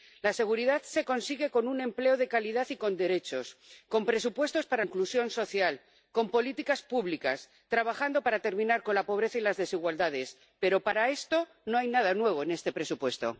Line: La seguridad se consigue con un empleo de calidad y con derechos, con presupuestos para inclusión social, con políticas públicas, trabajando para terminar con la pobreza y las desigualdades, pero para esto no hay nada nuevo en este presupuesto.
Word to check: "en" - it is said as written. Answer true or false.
true